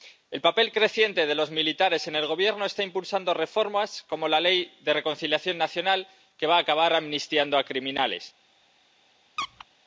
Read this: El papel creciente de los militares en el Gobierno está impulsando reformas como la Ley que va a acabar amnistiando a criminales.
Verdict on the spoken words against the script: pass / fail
fail